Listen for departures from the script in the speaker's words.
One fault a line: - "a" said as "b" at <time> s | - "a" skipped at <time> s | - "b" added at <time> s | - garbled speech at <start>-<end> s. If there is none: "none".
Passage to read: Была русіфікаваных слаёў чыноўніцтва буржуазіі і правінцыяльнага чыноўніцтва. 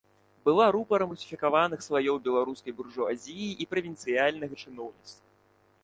- "рупарам" added at 0.8 s
- "чыноўніцтва" said as "беларускай" at 2.3 s